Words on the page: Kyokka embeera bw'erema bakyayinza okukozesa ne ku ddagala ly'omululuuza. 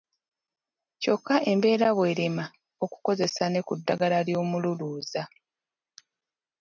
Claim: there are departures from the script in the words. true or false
true